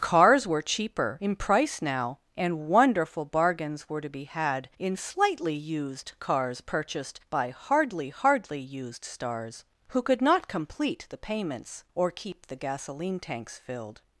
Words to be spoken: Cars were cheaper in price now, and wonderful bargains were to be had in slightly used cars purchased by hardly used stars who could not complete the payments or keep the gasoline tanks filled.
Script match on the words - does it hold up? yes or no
no